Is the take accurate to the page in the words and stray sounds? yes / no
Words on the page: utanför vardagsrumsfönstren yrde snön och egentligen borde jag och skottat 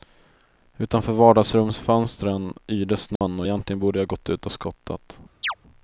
no